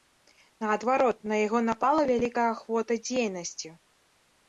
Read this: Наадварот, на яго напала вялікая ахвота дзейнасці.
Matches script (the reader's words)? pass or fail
pass